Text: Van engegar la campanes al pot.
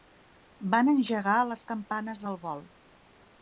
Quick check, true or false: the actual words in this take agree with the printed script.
false